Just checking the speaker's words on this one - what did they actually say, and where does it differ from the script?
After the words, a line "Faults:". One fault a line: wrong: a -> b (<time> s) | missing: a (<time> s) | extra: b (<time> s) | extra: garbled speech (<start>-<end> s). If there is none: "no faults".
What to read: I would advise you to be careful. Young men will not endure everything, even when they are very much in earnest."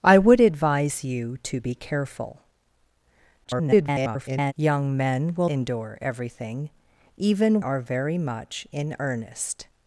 I would advise you to be careful. [garbled] Young men will endure everything, even are very much in earnest."
Faults:
extra: garbled speech (3.4-4.5 s)
missing: not (5.5 s)
missing: when they (7.6 s)